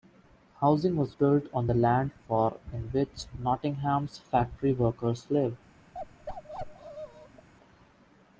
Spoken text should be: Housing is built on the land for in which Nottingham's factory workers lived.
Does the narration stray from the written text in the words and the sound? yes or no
yes